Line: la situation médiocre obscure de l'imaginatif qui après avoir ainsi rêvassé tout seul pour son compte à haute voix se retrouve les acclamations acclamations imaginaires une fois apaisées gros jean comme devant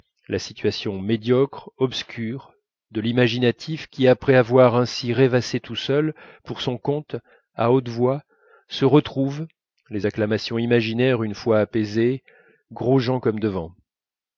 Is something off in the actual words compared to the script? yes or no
yes